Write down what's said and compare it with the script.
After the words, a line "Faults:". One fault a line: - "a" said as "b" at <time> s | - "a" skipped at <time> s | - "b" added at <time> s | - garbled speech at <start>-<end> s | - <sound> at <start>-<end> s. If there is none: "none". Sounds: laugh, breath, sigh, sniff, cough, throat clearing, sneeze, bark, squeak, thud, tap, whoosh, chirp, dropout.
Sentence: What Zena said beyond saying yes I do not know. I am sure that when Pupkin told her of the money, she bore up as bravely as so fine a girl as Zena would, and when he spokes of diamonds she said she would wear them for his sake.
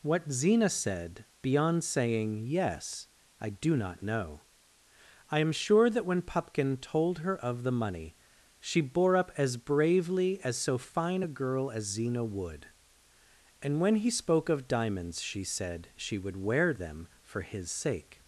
What Zena said beyond saying yes I do not know. I am sure that when Pupkin told her of the money, she bore up as bravely as so fine a girl as Zena would, and when he spoke of diamonds she said she would wear them for his sake.
Faults:
- "spokes" said as "spoke" at 14.1 s